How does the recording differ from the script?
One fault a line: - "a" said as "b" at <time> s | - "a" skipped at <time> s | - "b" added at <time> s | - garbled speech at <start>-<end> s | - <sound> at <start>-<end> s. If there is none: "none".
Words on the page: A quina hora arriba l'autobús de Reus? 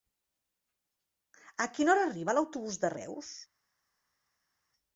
none